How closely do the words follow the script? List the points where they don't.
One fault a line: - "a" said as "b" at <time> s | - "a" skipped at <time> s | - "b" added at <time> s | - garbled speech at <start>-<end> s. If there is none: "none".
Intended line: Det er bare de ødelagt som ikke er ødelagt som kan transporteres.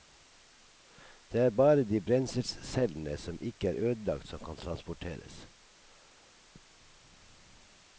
- "ødelagt" said as "brenselscellene" at 2.0 s